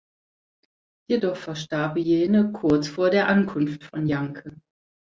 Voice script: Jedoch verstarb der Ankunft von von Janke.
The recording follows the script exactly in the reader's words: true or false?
false